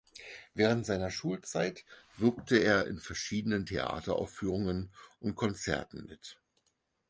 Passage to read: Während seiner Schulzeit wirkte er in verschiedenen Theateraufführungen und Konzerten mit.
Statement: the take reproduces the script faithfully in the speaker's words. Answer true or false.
true